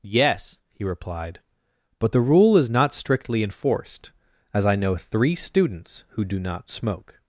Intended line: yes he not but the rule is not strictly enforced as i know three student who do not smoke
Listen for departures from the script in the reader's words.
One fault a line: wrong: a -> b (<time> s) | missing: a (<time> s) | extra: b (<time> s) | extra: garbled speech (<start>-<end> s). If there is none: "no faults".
wrong: not -> replied (0.8 s)
wrong: student -> students (5.4 s)